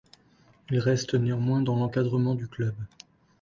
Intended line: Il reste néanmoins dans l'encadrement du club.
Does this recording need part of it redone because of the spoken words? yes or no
no